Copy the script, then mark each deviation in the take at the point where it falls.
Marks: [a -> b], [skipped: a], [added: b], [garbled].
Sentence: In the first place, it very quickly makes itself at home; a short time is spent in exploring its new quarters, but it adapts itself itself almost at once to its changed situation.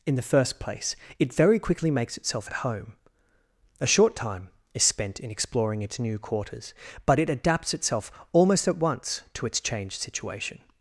In the first place, it very quickly makes itself at home; a short time is spent in exploring its new quarters, but it adapts itself [skipped: itself] almost at once to its changed situation.